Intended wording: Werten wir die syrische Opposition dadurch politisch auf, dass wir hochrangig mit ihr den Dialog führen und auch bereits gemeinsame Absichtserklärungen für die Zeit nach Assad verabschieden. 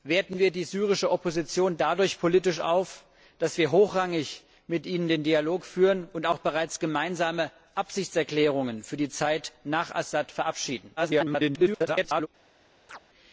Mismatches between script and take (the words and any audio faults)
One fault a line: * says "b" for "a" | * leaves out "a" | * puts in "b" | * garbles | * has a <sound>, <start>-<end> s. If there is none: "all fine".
* garbles
* has a chirp, 12.9-13.0 s